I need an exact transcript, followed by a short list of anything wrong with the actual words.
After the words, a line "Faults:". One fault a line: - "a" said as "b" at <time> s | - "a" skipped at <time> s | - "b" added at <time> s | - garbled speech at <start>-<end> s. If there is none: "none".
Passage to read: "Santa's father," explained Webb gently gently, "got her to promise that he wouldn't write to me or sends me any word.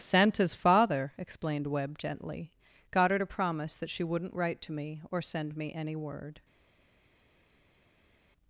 "Santa's father," explained Webb gently, "got her to promise that she wouldn't write to me or send me any word.
Faults:
- "gently" skipped at 2.5 s
- "he" said as "she" at 3.9 s
- "sends" said as "send" at 5.2 s